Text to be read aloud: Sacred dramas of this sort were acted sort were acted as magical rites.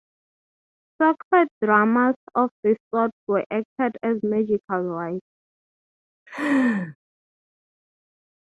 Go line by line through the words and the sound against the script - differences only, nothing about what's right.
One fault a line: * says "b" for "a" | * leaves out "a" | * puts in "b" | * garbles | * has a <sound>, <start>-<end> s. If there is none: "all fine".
* leaves out "sort were acted"
* has a laugh, 6.3-7.0 s